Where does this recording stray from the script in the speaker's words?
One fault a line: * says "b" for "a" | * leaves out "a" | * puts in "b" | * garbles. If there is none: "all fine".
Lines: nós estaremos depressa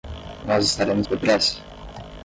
all fine